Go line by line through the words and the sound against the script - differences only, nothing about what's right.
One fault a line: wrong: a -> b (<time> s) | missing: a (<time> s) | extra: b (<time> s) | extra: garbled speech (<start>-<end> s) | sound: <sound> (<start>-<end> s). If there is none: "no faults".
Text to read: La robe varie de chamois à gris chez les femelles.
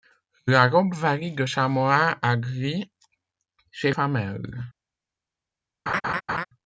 missing: les (3.9 s)
sound: laugh (5.9-6.4 s)